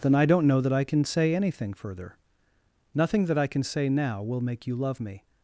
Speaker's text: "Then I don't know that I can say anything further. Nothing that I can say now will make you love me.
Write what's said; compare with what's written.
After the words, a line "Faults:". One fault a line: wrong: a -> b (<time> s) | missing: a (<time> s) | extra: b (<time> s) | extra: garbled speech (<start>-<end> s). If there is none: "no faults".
"Then I don't know that I can say anything further. Nothing that I can say now will make you love me.
Faults:
no faults